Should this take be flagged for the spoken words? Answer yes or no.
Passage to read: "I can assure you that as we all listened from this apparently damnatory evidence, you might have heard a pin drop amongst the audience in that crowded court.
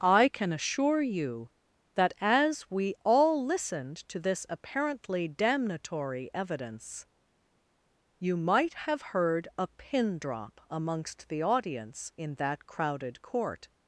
yes